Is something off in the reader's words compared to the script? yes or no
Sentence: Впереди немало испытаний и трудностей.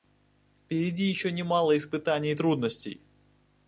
yes